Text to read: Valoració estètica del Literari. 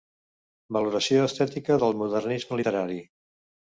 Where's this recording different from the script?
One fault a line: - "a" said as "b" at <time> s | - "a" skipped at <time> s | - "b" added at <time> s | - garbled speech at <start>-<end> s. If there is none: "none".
- "Modernisme" added at 2.0 s